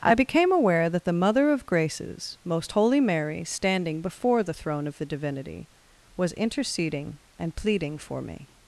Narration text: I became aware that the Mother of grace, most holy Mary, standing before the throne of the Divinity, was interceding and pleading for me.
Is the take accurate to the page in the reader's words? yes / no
no